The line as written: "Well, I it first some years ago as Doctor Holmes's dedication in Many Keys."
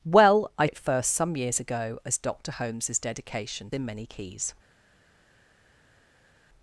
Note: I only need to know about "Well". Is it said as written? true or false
true